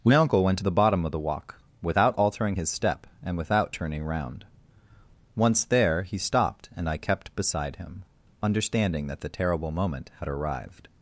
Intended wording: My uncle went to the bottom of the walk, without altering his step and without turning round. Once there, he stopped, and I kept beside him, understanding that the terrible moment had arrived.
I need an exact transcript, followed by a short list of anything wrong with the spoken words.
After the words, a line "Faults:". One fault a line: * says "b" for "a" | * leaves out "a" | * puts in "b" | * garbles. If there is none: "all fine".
My uncle went to the bottom of the walk, without altering his step and without turning round. Once there, he stopped, and I kept beside him, understanding that the terrible moment had arrived.
Faults:
all fine